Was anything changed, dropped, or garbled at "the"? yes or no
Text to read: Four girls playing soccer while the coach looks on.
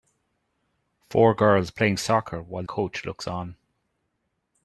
yes